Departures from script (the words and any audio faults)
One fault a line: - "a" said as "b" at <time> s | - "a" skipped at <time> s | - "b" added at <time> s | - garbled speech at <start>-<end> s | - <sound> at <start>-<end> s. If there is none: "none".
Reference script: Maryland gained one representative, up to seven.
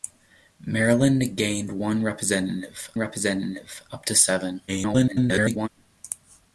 - "representative" added at 3.0 s
- garbled speech at 4.7-5.7 s